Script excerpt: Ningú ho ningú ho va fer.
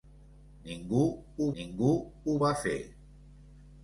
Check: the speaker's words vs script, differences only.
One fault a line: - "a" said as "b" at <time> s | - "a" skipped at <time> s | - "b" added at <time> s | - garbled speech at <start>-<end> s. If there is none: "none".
none